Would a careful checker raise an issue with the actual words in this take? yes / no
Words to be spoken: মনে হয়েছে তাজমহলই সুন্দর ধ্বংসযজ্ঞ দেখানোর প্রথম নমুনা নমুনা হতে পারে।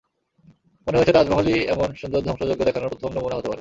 yes